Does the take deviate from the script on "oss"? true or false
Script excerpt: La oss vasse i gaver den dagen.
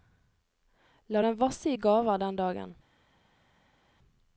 true